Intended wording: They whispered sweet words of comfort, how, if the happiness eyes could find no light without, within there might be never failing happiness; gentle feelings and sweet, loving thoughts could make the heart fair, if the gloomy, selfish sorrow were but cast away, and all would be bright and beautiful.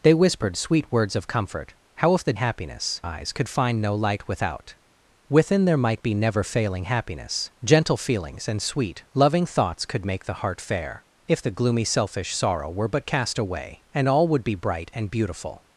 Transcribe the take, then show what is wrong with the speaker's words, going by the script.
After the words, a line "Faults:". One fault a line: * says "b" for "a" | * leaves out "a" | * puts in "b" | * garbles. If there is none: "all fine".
They whispered sweet words of comfort, how, if the happiness eyes could find no light without, within there might be never failing happiness; gentle feelings and sweet, loving thoughts could make the heart fair, if the gloomy, selfish sorrow were but cast away, and all would be bright and beautiful.
Faults:
all fine